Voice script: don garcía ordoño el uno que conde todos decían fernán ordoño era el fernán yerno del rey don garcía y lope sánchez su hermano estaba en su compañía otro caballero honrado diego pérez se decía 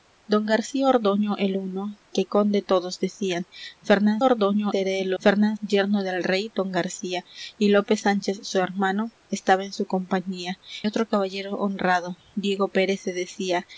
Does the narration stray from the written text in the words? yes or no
no